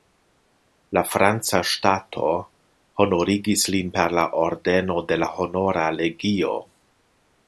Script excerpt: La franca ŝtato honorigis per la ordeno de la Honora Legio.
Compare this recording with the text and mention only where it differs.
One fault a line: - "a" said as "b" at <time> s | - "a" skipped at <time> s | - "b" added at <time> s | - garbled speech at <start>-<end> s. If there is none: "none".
- "lin" added at 3.8 s